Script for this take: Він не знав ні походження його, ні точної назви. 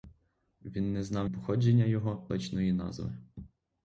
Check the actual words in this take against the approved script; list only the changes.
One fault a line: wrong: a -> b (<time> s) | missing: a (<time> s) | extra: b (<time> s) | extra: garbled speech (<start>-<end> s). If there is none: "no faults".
missing: ні (1.3 s)
missing: ні (2.3 s)